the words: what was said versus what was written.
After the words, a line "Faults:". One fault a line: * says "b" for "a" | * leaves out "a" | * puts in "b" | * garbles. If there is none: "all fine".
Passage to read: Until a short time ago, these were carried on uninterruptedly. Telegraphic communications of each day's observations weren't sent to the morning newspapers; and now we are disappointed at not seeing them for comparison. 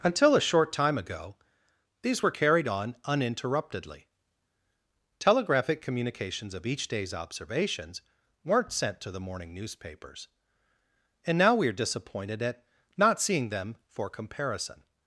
Until a short time ago, these were carried on uninterruptedly. Telegraphic communications of each day's observations weren't sent to the morning newspapers; and now we are disappointed at not seeing them for comparison.
Faults:
all fine